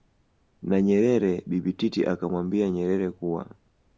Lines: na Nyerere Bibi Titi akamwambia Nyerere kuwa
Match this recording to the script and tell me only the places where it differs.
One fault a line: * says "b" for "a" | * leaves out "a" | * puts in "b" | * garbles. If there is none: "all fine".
all fine